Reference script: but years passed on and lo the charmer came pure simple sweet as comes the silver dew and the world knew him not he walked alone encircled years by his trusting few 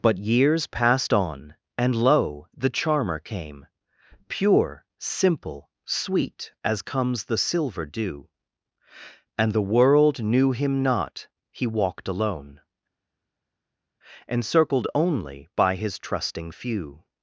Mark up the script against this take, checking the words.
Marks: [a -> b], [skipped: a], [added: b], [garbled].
but years passed on and lo the charmer came pure simple sweet as comes the silver dew and the world knew him not he walked alone encircled [years -> only] by his trusting few